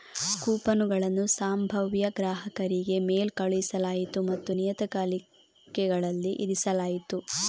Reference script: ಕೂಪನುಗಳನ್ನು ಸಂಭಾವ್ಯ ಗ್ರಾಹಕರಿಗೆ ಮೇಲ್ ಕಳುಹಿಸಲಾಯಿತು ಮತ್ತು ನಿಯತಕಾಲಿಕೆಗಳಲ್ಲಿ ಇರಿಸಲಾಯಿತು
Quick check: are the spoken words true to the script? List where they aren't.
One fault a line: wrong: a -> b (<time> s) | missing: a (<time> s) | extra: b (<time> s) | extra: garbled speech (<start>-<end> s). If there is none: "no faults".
no faults